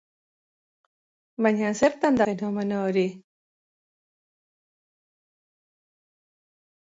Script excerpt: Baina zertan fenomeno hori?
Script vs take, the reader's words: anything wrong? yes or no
no